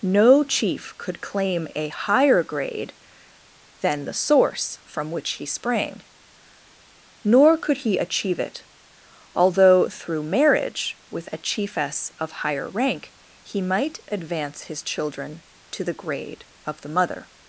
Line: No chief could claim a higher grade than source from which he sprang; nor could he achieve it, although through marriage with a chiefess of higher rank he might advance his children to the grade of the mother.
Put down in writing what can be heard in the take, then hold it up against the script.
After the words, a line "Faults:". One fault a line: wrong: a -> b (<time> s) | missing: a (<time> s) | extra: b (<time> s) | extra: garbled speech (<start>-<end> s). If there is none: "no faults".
No chief could claim a higher grade than the source from which he sprang; nor could he achieve it, although through marriage with a chiefess of higher rank he might advance his children to the grade of the mother.
Faults:
extra: the (4.0 s)